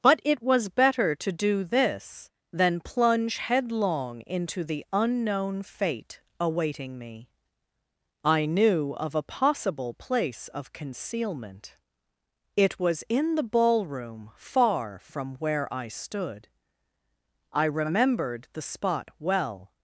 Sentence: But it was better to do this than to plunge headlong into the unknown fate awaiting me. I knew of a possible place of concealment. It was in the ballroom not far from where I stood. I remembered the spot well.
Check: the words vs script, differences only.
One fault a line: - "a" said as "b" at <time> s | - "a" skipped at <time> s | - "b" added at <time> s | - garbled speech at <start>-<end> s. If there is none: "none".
- "to" skipped at 2.8 s
- "not" skipped at 14.3 s